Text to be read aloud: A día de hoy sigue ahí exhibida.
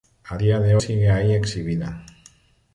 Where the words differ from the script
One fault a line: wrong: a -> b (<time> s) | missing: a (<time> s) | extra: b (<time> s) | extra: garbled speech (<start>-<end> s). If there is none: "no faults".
missing: hoy (0.8 s)